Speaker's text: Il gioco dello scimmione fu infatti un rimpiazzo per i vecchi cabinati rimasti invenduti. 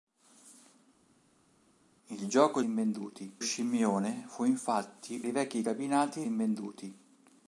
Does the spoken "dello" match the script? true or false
false